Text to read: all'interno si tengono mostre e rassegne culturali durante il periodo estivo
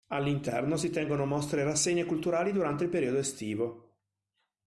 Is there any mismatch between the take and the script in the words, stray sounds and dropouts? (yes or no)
no